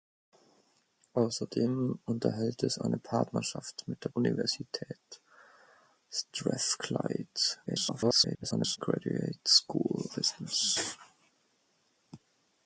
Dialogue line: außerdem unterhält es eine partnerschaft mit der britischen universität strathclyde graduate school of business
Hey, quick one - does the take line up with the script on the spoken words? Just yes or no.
no